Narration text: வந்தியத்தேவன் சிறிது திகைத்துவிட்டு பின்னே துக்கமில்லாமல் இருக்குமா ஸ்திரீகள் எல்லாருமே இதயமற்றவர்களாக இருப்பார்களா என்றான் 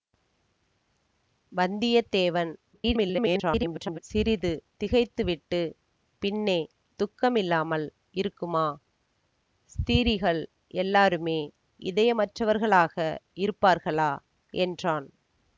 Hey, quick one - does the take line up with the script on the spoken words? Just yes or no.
no